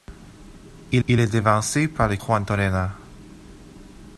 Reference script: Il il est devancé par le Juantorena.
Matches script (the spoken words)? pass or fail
pass